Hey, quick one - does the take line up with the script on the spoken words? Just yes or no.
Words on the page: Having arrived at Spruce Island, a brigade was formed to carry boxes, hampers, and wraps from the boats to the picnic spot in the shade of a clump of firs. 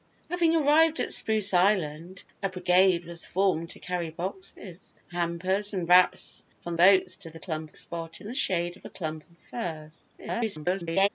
no